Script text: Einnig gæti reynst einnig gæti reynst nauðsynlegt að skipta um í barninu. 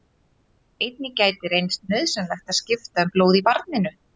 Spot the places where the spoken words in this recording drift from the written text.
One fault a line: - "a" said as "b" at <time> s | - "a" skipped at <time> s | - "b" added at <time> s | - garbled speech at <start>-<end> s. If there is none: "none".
- "einnig gæti reynst" skipped at 1.8 s
- "blóð" added at 3.2 s